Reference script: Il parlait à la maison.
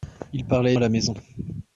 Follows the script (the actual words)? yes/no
yes